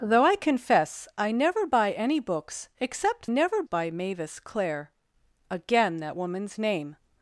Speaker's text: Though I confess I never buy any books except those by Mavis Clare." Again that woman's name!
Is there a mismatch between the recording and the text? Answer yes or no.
yes